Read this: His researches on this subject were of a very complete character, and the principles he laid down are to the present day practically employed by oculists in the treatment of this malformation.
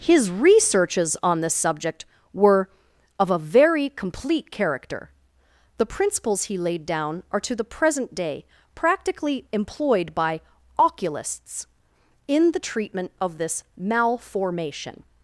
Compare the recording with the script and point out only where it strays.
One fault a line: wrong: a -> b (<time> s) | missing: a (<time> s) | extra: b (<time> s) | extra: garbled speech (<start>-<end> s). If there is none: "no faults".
missing: and (5.1 s)